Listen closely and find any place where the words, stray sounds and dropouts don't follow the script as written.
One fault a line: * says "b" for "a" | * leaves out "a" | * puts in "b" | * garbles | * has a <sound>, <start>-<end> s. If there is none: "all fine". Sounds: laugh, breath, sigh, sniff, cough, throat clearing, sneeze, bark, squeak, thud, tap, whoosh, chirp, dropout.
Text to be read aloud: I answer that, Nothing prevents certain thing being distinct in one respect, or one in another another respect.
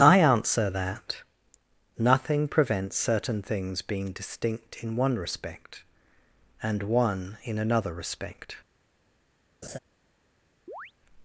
* says "things" for "thing"
* says "and" for "or"
* leaves out "another"
* has a laugh, 9.6-9.8 s
* has a chirp, 10.7-10.9 s